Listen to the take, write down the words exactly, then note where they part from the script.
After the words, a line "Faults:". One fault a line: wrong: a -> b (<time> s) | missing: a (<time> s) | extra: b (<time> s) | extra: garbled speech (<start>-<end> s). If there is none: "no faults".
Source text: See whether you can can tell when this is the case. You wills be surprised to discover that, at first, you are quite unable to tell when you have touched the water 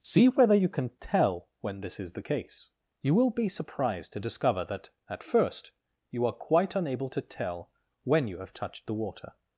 See whether you can tell when this is the case. You will be surprised to discover that, at first, you are quite unable to tell when you have touched the water
Faults:
missing: can (0.9 s)
wrong: wills -> will (3.1 s)